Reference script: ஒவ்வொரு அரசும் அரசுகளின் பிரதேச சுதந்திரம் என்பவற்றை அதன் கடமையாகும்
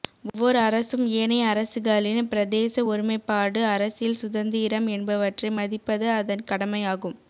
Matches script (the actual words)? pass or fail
fail